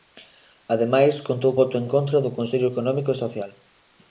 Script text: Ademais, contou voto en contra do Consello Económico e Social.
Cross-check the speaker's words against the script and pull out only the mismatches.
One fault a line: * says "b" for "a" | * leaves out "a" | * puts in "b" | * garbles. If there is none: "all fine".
all fine